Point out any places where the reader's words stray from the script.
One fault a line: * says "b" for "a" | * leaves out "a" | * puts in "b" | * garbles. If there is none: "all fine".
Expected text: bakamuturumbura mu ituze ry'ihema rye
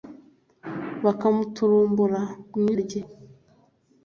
* leaves out "ituze ry'ihema"